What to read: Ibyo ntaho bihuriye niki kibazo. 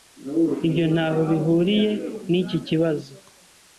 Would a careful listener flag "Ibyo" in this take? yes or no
no